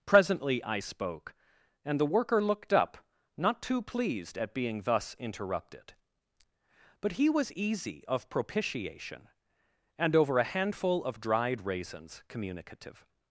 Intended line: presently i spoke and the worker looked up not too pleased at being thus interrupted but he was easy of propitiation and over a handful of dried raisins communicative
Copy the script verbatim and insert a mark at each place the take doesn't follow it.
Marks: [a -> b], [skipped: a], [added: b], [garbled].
presently i spoke and the worker looked up not too pleased at being thus interrupted but he was easy of propitiation and over a handful of dried raisins communicative